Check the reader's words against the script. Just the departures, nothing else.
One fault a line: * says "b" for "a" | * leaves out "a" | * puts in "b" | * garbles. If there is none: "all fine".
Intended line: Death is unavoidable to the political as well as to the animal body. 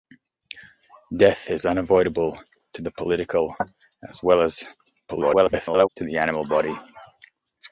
* garbles